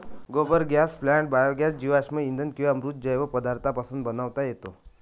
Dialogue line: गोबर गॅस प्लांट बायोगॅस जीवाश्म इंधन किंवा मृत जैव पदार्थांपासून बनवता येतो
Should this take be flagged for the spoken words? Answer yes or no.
no